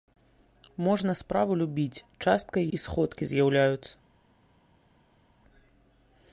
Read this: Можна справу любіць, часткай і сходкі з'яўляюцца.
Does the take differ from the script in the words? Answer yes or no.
no